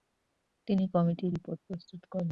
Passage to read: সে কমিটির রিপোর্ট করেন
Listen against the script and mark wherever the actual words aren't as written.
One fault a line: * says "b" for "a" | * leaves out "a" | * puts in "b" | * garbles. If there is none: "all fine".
* says "তিনি" for "সে"
* puts in "প্রস্তুত"